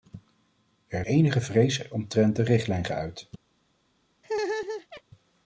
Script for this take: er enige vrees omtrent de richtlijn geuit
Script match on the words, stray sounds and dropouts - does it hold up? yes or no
no